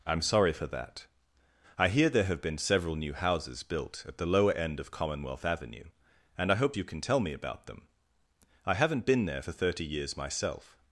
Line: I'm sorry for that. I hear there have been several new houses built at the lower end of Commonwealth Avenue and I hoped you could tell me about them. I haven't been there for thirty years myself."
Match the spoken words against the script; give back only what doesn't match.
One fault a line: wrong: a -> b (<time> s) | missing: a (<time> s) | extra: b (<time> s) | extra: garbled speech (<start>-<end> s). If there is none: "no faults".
wrong: could -> can (6.8 s)